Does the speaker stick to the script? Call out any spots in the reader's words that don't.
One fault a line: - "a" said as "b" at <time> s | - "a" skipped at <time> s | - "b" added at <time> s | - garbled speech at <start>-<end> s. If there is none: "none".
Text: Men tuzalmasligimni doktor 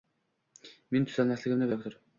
none